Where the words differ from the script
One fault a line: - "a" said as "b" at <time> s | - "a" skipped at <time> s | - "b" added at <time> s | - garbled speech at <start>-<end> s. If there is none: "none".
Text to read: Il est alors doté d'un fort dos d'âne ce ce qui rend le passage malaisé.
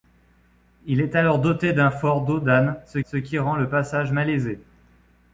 none